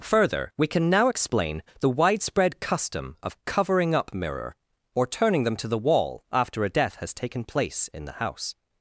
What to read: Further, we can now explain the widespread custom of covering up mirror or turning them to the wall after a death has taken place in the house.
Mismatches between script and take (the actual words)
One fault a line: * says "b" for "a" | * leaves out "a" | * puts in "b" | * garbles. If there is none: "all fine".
all fine